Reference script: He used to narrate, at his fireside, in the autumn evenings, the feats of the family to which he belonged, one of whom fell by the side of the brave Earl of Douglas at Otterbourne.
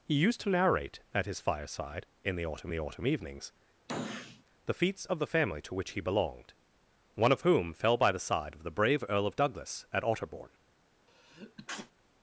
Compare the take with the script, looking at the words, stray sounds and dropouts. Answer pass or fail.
fail